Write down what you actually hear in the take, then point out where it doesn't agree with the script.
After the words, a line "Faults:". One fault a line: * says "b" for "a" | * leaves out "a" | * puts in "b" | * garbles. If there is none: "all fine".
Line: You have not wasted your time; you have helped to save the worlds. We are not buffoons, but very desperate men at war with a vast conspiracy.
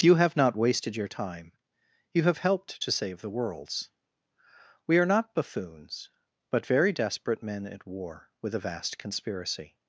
You have not wasted your time; you have helped to save the worlds. We are not buffoons, but very desperate men at war with a vast conspiracy.
Faults:
all fine